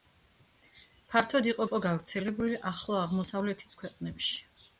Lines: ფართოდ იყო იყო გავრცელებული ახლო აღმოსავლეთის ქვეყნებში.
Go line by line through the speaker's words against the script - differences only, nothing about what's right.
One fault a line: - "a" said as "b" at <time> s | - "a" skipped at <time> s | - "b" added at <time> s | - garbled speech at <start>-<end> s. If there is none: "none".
none